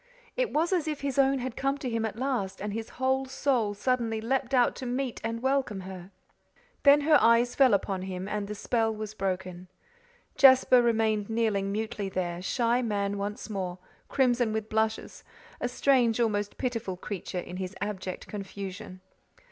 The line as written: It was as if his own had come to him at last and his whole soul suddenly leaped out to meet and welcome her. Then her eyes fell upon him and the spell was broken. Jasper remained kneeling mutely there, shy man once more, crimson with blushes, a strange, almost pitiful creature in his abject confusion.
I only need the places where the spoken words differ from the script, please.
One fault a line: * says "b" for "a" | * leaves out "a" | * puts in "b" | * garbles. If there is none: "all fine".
all fine